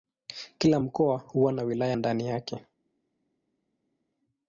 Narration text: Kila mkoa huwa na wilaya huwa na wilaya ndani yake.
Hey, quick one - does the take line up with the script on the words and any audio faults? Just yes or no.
no